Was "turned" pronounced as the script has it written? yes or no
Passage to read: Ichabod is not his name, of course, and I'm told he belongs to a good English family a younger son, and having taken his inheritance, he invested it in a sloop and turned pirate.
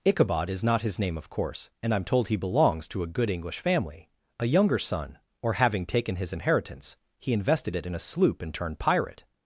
yes